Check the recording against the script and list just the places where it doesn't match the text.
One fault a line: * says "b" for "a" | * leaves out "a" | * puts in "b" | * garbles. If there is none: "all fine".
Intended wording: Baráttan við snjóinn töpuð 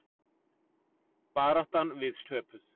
* leaves out "snjóinn"